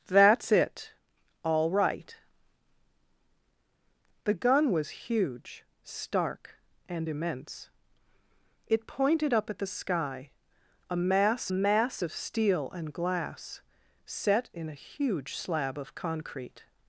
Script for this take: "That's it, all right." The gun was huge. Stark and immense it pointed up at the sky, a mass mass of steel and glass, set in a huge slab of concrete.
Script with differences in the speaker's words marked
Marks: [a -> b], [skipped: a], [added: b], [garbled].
"That's it, all right." The gun was huge. Stark and immense it pointed up at the sky, a mass mass of steel and glass, set in a huge slab of concrete.